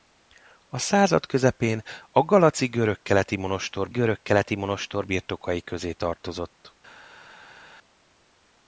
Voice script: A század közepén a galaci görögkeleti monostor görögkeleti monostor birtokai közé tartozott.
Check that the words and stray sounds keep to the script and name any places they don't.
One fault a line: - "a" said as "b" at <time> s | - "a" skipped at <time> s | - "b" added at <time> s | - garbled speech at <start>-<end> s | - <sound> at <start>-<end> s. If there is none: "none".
none